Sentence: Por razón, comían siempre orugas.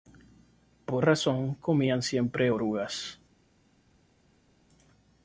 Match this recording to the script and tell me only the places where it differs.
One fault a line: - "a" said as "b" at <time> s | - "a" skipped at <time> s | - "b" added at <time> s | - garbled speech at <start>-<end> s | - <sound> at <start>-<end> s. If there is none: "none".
none